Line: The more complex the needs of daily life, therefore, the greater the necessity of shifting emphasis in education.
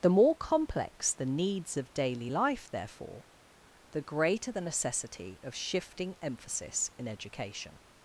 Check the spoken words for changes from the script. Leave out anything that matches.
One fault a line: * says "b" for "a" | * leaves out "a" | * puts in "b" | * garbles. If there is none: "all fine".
all fine